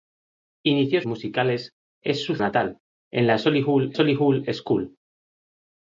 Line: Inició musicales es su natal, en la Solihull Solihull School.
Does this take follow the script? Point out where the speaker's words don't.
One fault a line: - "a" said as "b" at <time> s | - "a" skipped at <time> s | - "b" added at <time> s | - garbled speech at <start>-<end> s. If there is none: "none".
none